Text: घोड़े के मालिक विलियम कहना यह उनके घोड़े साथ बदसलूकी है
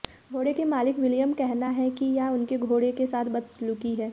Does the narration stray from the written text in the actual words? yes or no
yes